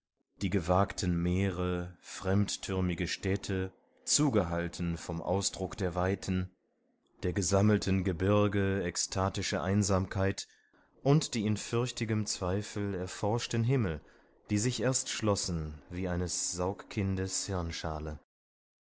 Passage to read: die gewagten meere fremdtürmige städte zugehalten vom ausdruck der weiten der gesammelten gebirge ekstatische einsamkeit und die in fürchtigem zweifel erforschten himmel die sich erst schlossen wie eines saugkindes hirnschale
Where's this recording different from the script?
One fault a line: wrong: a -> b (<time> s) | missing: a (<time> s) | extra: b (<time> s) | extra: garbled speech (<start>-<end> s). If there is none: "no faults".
no faults